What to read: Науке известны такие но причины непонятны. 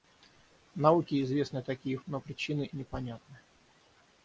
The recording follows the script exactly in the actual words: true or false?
true